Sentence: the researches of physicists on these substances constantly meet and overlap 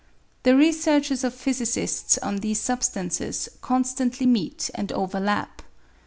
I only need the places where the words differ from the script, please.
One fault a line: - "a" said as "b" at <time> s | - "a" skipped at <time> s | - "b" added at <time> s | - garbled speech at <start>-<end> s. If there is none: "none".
none